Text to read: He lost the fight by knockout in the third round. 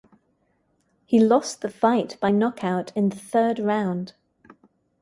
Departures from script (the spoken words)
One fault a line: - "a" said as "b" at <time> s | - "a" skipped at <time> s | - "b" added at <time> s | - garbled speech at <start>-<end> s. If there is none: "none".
none